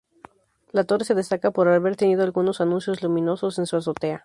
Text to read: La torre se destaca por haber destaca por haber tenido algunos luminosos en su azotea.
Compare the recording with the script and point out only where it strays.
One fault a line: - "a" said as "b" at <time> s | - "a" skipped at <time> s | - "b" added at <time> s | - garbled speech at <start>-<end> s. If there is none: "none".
- "destaca por haber" skipped at 1.9 s
- "anuncios" added at 2.6 s